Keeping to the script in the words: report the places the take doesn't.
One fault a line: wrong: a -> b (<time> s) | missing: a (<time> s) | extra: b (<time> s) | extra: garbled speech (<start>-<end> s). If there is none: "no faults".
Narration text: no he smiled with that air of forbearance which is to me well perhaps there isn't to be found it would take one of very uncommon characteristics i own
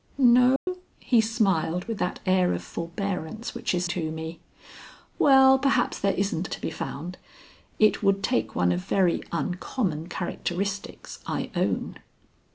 no faults